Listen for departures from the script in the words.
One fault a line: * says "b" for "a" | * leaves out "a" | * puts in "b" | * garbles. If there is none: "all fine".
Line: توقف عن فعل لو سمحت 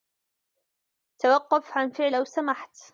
all fine